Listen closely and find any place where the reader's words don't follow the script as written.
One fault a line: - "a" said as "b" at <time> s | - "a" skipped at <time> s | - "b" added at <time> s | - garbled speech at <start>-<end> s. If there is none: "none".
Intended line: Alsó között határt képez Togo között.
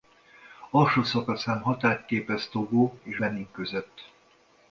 - "között" said as "szakaszán" at 1.0 s
- "és Benin" added at 3.0 s